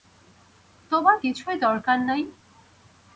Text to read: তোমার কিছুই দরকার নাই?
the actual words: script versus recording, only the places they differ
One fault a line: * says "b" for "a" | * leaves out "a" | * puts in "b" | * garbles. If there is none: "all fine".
all fine